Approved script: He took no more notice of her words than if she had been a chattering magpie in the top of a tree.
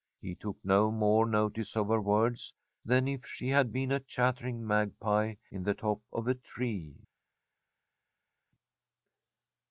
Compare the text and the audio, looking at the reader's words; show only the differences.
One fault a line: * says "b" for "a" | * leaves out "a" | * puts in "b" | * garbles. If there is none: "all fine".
all fine